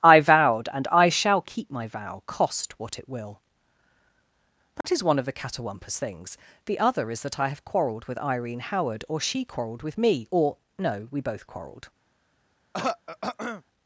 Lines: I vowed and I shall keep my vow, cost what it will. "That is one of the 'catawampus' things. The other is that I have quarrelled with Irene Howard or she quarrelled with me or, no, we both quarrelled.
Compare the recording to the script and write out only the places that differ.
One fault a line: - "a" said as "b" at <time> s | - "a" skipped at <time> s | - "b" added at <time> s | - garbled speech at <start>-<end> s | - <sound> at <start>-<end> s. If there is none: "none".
- dropout at 4.8-4.8 s
- throat clearing at 12.7-13.6 s